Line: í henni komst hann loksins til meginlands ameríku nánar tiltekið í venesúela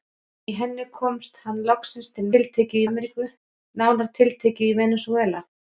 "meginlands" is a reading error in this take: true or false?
true